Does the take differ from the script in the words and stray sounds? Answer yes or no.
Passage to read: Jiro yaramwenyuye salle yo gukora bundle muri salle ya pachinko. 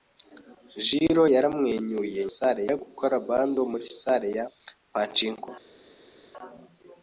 no